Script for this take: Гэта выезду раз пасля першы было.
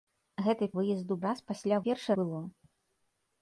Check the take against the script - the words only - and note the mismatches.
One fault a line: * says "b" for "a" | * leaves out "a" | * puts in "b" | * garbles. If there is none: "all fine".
all fine